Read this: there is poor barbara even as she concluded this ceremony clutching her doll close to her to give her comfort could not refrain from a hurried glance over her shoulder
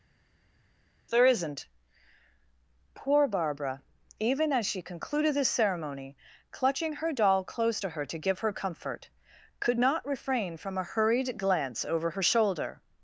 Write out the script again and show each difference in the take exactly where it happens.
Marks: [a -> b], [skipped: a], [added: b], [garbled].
there [is -> isn't] poor barbara even as she concluded this ceremony clutching her doll close to her to give her comfort could not refrain from a hurried glance over her shoulder